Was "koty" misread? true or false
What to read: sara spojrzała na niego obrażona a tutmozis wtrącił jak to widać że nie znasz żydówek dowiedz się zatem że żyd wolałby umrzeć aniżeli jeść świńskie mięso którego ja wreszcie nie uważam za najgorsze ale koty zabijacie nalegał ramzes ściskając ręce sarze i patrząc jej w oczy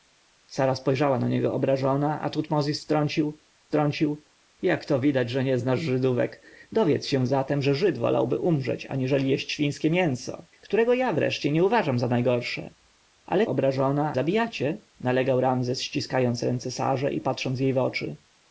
true